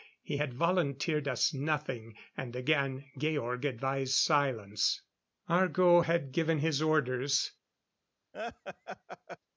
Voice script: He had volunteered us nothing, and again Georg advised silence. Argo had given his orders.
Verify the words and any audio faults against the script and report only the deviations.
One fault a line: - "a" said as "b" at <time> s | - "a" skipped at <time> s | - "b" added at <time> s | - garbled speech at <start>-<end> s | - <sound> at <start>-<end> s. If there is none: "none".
- laugh at 8.3-9.4 s